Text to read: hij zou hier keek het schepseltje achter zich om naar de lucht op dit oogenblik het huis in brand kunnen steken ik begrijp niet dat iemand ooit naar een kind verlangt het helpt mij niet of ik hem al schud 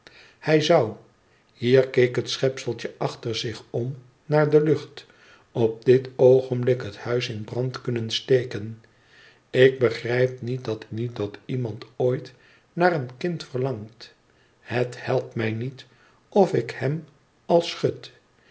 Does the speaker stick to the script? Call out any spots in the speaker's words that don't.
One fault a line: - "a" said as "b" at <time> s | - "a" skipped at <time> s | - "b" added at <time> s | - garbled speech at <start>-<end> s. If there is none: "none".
- "niet dat" added at 10.9 s